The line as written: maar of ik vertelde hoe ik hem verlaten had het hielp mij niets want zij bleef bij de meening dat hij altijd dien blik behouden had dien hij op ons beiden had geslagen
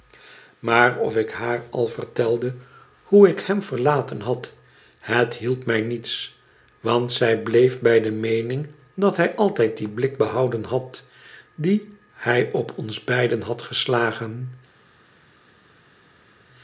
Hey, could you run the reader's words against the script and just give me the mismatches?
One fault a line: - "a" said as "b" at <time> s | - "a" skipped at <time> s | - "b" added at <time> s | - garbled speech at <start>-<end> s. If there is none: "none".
- "haar al" added at 1.3 s